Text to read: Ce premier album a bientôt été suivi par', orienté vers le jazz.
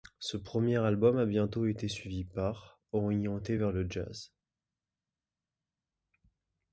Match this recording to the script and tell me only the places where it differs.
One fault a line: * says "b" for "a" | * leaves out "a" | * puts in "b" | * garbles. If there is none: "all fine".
all fine